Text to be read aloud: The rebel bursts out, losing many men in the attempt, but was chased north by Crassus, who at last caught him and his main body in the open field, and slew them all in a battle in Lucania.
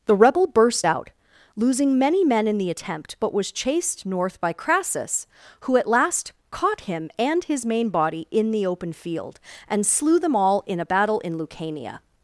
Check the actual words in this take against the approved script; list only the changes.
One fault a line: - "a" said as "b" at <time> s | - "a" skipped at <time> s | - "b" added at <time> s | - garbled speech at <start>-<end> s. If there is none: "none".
- "bursts" said as "burst" at 0.5 s